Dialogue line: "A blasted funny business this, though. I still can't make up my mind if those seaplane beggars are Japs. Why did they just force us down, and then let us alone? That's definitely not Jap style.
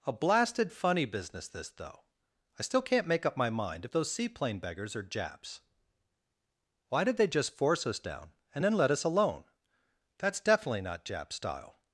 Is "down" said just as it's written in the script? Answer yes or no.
yes